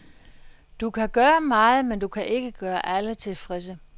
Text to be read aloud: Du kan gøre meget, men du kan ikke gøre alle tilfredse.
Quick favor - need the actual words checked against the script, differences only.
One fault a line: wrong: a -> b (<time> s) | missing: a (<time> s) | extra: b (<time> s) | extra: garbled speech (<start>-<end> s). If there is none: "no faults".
no faults